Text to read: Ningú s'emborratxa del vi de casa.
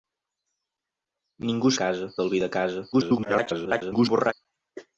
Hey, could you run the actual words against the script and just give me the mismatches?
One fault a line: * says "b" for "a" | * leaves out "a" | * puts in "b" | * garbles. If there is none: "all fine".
* says "casa" for "s'emborratxa"
* garbles